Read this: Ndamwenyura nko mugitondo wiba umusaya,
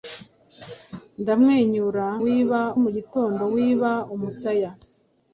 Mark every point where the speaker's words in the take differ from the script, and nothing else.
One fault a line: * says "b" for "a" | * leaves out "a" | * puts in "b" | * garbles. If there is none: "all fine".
* says "wiba" for "nko"